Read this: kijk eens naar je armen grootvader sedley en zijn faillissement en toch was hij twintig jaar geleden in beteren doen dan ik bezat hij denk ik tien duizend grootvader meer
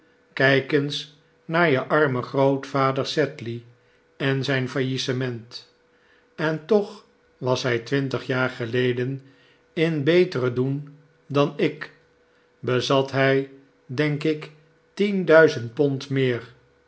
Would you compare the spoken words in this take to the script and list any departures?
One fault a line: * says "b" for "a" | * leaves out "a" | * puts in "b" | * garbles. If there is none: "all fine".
* says "pond" for "grootvader"